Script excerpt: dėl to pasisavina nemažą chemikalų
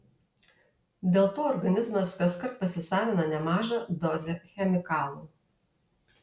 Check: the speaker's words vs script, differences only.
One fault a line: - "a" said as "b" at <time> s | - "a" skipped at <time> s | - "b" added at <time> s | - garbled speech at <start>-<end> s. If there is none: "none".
- "organizmas kaskart" added at 1.5 s
- "dozę" added at 4.1 s